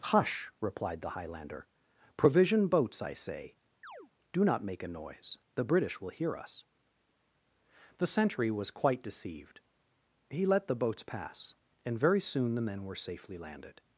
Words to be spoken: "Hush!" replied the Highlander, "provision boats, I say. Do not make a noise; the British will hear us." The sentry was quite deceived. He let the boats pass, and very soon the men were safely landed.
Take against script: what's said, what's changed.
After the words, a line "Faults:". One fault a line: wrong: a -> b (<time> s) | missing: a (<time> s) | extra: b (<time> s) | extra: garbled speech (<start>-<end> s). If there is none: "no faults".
"Hush!" replied the Highlander, "provision boats, I say. Do not make a noise; the British will hear us." The sentry was quite deceived. He let the boats pass, and very soon the men were safely landed.
Faults:
no faults